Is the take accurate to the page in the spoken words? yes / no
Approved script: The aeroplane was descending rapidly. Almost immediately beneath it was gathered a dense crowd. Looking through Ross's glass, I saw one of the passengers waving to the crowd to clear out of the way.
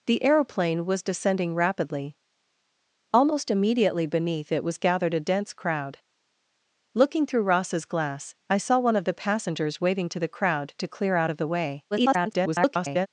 no